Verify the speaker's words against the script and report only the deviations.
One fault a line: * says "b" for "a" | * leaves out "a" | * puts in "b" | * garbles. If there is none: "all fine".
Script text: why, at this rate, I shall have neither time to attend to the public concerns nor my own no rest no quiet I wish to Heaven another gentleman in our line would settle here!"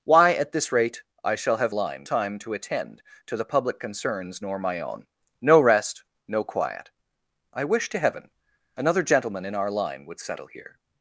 * says "line" for "neither"